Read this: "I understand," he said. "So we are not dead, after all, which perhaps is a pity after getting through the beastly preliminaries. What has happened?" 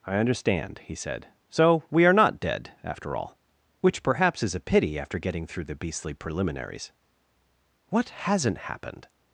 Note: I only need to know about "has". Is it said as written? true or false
false